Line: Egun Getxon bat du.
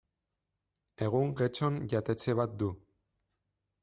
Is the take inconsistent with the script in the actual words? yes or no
yes